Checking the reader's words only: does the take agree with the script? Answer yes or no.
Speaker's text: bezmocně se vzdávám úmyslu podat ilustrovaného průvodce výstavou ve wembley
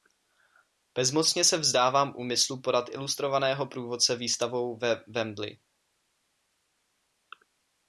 yes